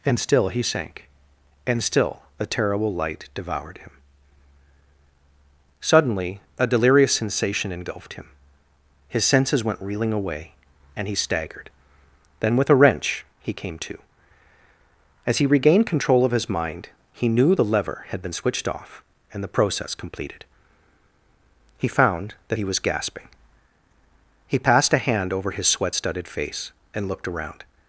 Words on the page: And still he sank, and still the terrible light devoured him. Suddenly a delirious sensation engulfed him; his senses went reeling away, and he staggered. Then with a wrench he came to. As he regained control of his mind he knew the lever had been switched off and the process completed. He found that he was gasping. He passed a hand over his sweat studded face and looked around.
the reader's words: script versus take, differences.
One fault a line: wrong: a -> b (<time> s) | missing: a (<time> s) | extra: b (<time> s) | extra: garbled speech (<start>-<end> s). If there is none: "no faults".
wrong: the -> a (2.4 s)